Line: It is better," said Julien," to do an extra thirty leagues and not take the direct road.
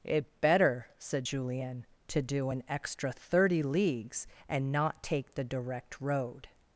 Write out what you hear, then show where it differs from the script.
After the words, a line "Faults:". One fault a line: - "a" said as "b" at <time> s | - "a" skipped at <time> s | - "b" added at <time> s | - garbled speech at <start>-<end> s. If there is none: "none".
It better," said Julien," to do an extra thirty leagues and not take the direct road.
Faults:
- "is" skipped at 0.4 s